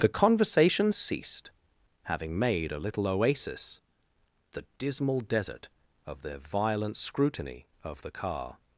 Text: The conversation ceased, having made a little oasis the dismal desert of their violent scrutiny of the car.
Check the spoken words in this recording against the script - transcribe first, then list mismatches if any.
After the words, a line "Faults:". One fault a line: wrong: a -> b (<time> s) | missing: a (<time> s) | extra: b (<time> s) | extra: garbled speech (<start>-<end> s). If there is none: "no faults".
The conversation ceased, having made a little oasis the dismal desert of their violent scrutiny of the car.
Faults:
no faults